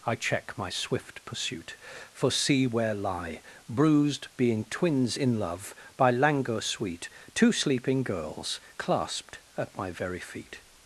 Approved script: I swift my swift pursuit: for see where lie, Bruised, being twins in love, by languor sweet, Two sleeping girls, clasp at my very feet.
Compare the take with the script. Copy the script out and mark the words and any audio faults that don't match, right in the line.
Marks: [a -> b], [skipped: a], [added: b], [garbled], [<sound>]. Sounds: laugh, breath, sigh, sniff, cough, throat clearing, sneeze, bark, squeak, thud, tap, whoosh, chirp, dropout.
I [swift -> check] my swift pursuit: for see where lie, Bruised, being twins in love, by languor sweet, Two sleeping girls, [clasp -> clasped] at my very feet.